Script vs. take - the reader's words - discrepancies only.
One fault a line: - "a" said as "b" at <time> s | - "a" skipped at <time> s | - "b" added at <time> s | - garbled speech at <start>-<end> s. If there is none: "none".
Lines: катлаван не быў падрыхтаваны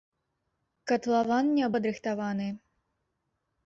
- "быў" skipped at 1.7 s